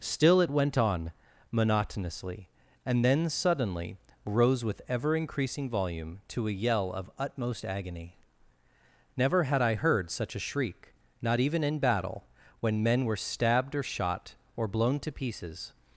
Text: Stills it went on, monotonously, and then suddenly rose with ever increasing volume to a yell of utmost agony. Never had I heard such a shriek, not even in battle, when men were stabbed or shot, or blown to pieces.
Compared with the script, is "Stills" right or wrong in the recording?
wrong